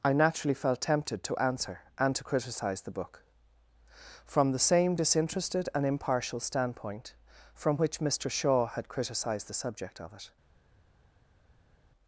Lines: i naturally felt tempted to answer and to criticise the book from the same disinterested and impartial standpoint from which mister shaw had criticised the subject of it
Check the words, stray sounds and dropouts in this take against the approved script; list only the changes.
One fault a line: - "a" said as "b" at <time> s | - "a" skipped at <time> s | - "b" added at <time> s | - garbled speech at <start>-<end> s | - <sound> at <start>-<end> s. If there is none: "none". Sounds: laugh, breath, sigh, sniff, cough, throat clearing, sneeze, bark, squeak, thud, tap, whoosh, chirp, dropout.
none